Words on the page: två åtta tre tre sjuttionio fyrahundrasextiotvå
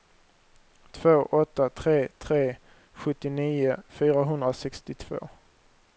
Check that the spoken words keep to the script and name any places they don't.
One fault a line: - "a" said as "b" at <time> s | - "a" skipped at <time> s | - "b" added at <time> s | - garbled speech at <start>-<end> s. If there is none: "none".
none